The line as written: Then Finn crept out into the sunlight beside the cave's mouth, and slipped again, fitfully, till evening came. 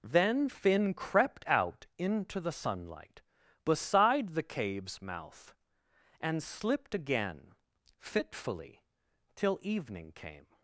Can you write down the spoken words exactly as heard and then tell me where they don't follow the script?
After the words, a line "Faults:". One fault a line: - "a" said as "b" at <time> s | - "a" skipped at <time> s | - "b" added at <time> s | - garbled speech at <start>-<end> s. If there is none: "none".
Then Finn crept out into the sunlight beside the cave's mouth, and slipped again, fitfully, till evening came.
Faults:
none